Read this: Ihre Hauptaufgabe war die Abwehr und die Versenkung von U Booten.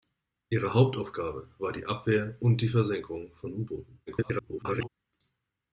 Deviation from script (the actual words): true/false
true